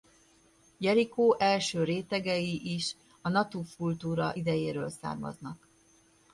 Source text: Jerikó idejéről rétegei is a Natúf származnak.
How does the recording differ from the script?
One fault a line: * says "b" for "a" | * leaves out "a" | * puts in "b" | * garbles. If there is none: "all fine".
* says "első" for "idejéről"
* puts in "kultúra idejéről"